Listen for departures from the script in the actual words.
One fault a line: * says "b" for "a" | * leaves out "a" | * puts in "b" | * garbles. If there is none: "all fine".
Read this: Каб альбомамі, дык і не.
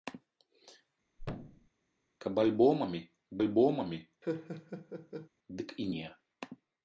* puts in "альбомамі"